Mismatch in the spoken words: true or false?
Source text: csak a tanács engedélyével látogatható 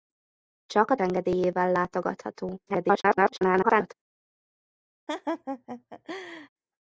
true